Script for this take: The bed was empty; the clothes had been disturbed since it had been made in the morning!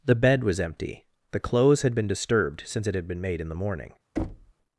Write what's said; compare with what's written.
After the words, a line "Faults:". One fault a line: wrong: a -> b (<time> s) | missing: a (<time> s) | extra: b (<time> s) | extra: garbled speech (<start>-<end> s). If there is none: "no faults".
The bed was empty; the clothes had been disturbed since it had been made in the morning!
Faults:
no faults